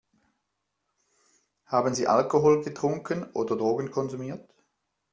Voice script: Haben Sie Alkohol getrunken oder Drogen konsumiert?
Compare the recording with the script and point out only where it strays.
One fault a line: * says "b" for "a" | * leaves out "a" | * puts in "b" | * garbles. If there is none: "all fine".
all fine